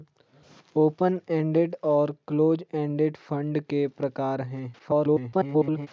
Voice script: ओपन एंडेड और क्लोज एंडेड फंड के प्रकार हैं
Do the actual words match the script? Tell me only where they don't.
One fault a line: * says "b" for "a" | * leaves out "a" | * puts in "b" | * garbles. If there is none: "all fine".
* garbles